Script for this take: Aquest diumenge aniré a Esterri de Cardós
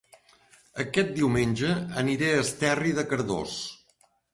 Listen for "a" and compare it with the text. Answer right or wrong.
right